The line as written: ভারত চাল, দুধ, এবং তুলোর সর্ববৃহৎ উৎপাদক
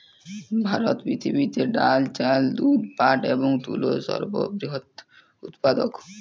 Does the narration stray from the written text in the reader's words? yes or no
yes